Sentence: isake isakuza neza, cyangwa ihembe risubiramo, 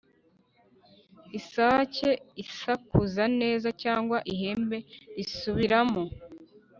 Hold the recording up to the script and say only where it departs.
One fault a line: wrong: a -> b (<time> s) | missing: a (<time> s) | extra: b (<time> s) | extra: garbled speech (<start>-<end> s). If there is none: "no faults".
no faults